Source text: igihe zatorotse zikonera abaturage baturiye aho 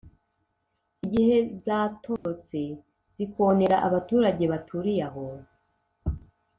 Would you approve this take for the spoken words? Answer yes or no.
yes